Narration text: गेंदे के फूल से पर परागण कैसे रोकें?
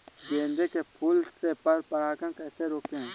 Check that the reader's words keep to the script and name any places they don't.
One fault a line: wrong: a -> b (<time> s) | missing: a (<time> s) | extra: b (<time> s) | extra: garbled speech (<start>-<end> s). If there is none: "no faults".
no faults